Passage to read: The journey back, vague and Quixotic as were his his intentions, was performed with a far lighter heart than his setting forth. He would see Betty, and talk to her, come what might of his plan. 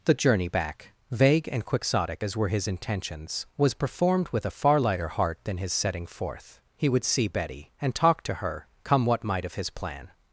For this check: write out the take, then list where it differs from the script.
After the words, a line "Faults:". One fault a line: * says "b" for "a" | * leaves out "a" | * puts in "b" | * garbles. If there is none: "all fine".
The journey back, vague and Quixotic as were his intentions, was performed with a far lighter heart than his setting forth. He would see Betty, and talk to her, come what might of his plan.
Faults:
* leaves out "his"